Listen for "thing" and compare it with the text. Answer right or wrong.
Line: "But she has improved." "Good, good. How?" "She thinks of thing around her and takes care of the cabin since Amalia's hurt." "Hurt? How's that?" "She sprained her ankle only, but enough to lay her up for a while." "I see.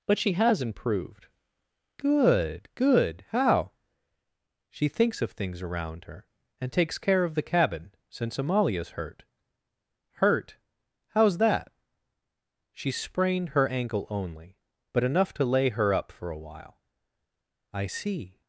wrong